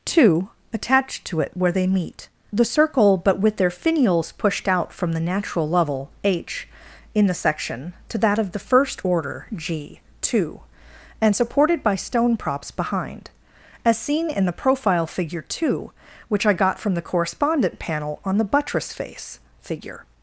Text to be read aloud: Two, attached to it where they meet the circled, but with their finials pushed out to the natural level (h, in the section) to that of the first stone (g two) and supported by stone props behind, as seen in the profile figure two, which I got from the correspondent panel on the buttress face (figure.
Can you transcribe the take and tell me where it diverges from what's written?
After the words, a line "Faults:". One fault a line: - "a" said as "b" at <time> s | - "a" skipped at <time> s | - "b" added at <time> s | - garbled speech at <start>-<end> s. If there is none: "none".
Two, attached to it where they meet the circle, but with their finials pushed out from the natural level (h, in the section) to that of the first order (g two) and supported by stone props behind, as seen in the profile figure two, which I got from the correspondent panel on the buttress face (figure.
Faults:
- "circled" said as "circle" at 2.6 s
- "to" said as "from" at 4.9 s
- "stone" said as "order" at 9.0 s